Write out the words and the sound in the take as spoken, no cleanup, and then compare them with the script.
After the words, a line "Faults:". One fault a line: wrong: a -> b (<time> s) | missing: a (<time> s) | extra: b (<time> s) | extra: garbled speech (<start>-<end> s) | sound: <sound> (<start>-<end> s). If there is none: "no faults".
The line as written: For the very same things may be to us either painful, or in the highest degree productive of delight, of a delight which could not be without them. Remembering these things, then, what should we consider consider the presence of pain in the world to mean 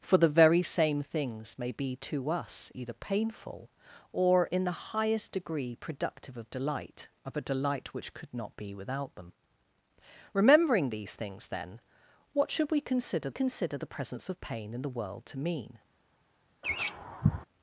For the very same things may be to us either painful, or in the highest degree productive of delight, of a delight which could not be without them. Remembering these things, then, what should we consider consider the presence of pain in the world to mean
Faults:
sound: laugh (16.6-17.5 s)